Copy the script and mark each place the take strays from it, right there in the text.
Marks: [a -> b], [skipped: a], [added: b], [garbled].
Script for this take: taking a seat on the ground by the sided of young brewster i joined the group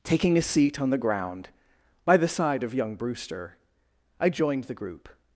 taking a seat on the ground by the [sided -> side] of young brewster i joined the group